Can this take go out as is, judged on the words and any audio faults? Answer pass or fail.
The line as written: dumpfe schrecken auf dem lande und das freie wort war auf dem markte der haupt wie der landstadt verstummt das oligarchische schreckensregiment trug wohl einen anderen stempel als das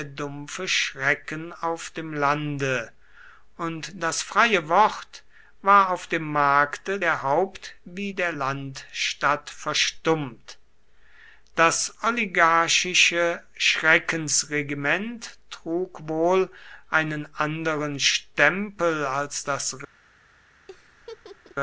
fail